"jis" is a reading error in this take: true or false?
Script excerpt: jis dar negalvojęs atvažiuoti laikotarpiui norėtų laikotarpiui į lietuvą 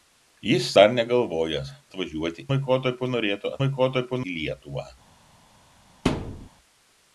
false